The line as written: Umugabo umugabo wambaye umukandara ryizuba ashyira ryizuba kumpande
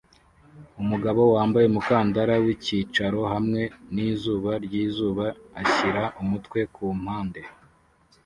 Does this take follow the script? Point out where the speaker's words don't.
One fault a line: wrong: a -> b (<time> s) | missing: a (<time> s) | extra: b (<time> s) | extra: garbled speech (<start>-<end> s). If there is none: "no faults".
missing: umugabo (1.2 s)
extra: wicyicaro hamwe nizuba (2.5 s)
wrong: ryizuba -> umutwe (6.2 s)